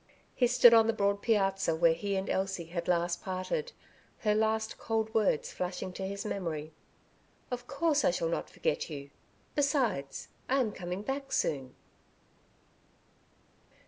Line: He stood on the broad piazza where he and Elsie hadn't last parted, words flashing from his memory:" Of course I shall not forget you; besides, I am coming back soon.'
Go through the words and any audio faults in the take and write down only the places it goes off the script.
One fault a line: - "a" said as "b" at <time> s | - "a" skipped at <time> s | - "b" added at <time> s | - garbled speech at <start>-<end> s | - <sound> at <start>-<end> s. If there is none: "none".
- "hadn't" said as "had" at 2.7 s
- "her last cold" added at 4.2 s
- "from" said as "to" at 5.9 s